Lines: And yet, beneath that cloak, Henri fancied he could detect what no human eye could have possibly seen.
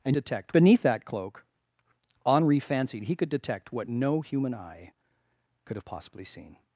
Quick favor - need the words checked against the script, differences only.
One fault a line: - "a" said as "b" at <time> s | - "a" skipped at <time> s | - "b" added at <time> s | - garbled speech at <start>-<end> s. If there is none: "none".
- "yet" said as "detect" at 0.1 s